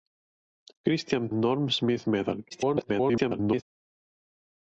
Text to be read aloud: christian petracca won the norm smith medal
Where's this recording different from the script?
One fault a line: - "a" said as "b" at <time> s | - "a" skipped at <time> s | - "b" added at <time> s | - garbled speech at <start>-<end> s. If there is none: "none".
- "petracca won the" skipped at 1.3 s
- garbled speech at 2.5-3.6 s